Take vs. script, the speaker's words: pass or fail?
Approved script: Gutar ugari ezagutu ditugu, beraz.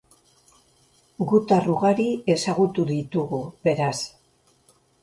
pass